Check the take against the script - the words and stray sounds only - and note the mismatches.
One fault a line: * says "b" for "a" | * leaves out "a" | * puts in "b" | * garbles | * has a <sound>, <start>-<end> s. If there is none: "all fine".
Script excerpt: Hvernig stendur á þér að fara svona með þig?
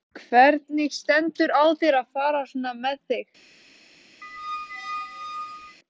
* has a squeak, 4.2-5.8 s